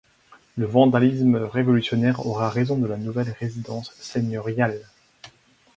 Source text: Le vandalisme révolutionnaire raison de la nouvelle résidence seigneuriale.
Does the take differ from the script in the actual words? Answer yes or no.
yes